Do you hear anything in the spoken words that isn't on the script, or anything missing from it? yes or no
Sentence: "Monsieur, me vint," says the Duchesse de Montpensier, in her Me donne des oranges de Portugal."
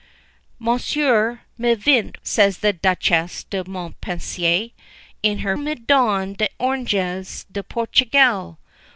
no